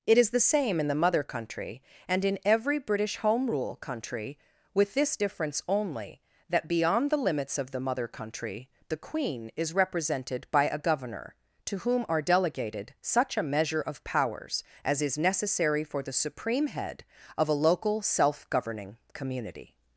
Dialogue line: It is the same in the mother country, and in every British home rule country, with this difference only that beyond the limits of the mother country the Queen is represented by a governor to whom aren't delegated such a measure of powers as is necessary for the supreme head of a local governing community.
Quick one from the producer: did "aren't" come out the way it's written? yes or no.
no